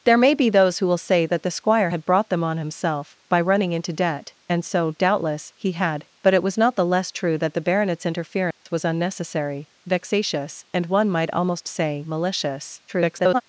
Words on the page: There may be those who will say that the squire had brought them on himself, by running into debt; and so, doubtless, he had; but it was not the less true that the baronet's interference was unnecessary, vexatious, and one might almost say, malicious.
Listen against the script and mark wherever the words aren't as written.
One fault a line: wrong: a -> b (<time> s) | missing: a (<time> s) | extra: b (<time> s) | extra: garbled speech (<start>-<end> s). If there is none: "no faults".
extra: garbled speech (12.9-13.4 s)